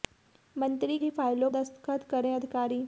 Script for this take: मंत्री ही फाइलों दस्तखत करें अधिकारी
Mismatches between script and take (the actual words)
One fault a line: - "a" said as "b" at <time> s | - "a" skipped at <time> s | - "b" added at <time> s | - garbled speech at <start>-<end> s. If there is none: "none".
none